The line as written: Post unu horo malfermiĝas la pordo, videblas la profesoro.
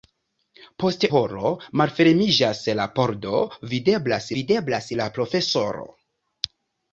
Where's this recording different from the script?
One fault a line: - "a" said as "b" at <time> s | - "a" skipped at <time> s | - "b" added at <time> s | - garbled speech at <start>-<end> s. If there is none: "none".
- "unu" skipped at 1.0 s
- "videblas" added at 4.4 s